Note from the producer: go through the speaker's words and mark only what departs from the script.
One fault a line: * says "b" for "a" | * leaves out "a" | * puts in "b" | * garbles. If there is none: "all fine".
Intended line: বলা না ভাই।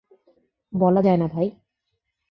* puts in "যায়"